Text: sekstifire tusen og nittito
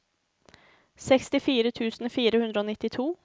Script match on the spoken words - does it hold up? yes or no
no